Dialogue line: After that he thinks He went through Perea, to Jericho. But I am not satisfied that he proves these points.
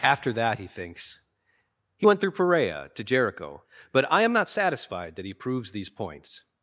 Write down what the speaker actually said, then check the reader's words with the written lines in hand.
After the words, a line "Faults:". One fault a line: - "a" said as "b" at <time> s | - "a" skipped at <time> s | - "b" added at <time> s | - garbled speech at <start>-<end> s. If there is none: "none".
After that he thinks He went through Perea, to Jericho. But I am not satisfied that he proves these points.
Faults:
none